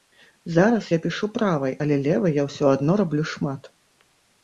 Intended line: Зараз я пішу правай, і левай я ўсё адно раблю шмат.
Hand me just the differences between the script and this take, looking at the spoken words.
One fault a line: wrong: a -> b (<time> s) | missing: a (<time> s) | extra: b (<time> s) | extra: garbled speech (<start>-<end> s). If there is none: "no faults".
wrong: і -> але (1.9 s)